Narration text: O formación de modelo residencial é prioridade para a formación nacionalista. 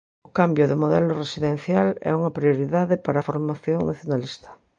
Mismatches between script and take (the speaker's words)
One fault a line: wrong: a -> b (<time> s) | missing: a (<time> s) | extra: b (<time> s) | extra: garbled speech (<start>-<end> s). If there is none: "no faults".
wrong: formación -> cambio (0.4 s)
extra: unha (2.2 s)